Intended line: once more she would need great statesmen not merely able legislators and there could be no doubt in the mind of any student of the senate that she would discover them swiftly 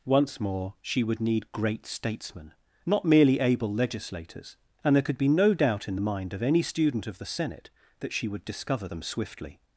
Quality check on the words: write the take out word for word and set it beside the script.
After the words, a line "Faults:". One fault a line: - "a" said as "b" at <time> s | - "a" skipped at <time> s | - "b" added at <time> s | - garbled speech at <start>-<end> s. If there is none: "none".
once more she would need great statesmen not merely able legislators and there could be no doubt in the mind of any student of the senate that she would discover them swiftly
Faults:
none